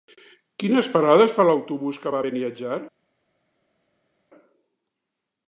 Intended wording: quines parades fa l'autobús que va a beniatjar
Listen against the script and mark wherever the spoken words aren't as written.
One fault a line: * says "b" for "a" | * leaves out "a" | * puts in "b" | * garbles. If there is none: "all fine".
all fine